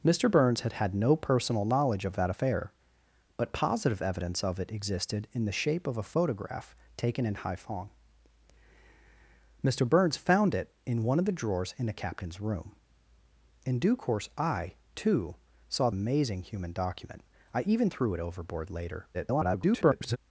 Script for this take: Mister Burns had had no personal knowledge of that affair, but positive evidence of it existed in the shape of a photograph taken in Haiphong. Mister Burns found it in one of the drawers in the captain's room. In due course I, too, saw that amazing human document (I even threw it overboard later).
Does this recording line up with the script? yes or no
no